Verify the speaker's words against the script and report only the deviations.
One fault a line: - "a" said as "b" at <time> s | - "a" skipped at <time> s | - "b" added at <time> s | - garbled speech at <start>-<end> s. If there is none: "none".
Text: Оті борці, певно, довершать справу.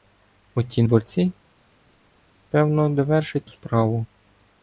none